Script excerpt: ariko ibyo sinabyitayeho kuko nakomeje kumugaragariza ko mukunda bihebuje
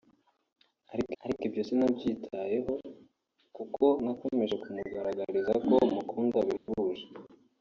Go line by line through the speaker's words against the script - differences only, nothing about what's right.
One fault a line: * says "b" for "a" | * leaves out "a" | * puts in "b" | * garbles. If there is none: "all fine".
* puts in "ariko"